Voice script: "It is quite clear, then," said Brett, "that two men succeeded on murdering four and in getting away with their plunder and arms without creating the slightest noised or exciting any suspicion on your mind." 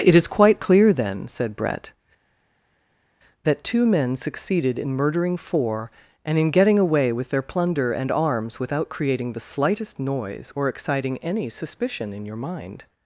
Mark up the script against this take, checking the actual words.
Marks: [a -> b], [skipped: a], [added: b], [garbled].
"It is quite clear, then," said Brett, "that two men succeeded [on -> in] murdering four and in getting away with their plunder and arms without creating the slightest [noised -> noise] or exciting any suspicion [on -> in] your mind."